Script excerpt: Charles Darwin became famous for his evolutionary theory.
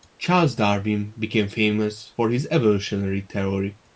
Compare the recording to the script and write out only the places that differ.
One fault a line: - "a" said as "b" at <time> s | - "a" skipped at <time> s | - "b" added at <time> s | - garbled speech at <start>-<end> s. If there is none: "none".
none